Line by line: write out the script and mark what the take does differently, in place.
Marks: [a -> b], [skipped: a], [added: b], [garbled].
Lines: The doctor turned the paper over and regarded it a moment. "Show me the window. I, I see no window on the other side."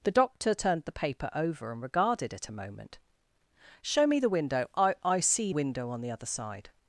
The doctor turned the paper over and regarded it a moment. "Show me the window. I, I see [skipped: no] window on the other side."